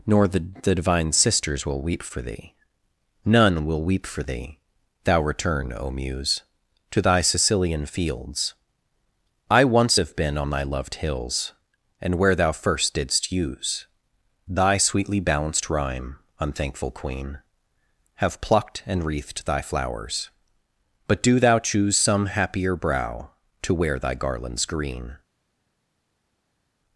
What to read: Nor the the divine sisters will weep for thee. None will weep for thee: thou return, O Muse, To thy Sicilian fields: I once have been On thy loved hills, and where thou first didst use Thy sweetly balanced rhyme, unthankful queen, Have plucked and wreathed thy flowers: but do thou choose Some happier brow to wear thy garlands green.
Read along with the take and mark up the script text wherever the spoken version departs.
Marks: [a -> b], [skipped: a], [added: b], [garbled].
Nor the the divine sisters will weep for thee. None will weep for thee: thou return, O Muse, To thy Sicilian fields: I once have been On thy loved hills, and where thou first didst use Thy sweetly balanced rhyme, unthankful queen, Have plucked and wreathed thy flowers: but do thou choose Some happier brow to wear thy garlands green.